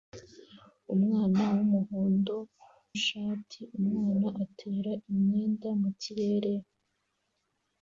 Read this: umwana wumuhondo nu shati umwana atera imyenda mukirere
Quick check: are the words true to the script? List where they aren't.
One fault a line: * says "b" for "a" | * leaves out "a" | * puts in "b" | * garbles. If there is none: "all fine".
* leaves out "nu"